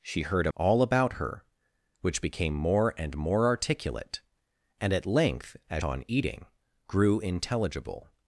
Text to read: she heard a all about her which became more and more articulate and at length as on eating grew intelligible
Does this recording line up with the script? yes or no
yes